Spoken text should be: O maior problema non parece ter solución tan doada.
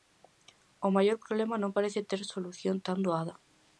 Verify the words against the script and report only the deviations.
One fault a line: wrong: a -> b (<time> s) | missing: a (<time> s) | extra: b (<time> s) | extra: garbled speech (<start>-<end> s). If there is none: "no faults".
no faults